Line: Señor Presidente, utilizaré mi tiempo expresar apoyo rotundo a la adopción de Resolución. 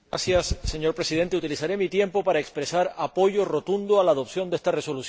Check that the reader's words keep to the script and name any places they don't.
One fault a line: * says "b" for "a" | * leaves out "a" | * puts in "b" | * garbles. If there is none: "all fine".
* puts in "para"
* puts in "esta"